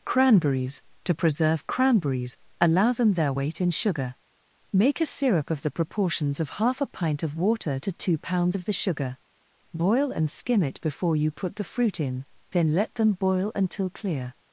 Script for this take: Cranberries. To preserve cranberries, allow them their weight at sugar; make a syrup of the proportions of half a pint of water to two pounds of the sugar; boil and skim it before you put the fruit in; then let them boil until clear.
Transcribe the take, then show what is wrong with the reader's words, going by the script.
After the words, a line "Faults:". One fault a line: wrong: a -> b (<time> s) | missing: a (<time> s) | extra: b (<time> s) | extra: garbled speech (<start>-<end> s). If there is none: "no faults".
Cranberries. To preserve cranberries, allow them their weight in sugar; make a syrup of the proportions of half a pint of water to two pounds of the sugar; boil and skim it before you put the fruit in; then let them boil until clear.
Faults:
wrong: at -> in (3.6 s)